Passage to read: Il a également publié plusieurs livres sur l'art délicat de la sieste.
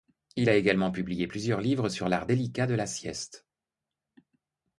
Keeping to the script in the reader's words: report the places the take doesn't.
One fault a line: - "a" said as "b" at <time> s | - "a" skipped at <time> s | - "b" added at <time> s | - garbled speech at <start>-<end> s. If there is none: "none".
none